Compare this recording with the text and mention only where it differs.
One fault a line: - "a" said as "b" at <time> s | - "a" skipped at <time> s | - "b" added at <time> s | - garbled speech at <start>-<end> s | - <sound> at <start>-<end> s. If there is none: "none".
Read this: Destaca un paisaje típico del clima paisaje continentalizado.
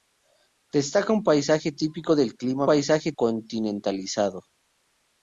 none